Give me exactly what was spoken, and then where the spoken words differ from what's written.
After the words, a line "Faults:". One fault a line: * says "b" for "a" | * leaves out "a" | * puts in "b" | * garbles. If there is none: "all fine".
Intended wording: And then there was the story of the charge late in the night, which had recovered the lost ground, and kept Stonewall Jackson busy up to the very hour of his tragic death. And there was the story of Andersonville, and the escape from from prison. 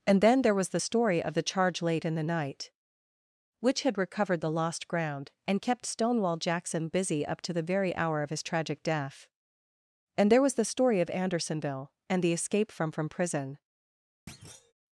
And then there was the story of the charge late in the night, which had recovered the lost ground, and kept Stonewall Jackson busy up to the very hour of his tragic death. And there was the story of Andersonville, and the escape from from prison.
Faults:
all fine